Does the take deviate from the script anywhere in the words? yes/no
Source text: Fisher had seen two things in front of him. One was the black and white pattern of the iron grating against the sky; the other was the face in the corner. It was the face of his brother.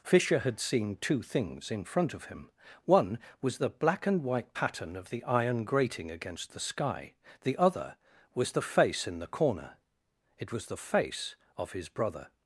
no